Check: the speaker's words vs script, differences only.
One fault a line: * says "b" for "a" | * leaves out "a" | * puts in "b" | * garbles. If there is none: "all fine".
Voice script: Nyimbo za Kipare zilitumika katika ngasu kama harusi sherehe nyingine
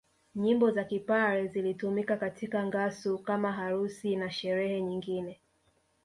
* puts in "na"